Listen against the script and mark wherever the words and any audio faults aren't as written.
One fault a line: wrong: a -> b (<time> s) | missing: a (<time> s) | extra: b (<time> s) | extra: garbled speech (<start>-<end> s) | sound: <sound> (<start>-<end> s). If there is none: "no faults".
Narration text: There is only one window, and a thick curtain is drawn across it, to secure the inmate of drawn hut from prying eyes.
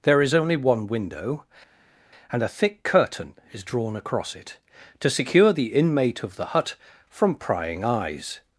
wrong: drawn -> the (6.4 s)